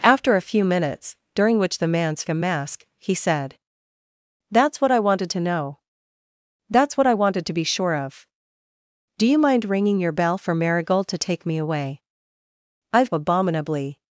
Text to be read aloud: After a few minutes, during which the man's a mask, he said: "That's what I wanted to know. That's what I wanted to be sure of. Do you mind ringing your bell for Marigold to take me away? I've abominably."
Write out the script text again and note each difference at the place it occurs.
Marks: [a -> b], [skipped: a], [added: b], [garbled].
After a few minutes, during which the man's a mask, he said: "That's what I wanted to know. That's what I wanted to be sure of. Do you mind ringing your bell for Marigold to take me away? I've abominably."